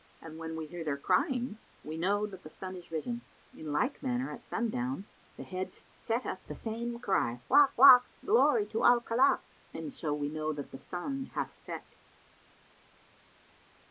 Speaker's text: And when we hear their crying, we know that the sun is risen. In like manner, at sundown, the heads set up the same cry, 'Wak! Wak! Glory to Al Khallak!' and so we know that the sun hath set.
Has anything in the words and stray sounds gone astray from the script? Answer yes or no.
no